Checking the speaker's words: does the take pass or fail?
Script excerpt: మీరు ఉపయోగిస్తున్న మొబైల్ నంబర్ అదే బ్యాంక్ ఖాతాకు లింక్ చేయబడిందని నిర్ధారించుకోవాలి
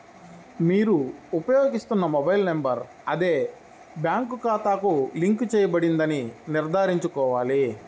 pass